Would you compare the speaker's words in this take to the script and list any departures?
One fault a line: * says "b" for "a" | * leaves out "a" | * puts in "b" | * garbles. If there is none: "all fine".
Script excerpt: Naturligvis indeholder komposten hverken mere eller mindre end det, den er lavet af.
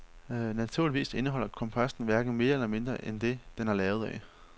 all fine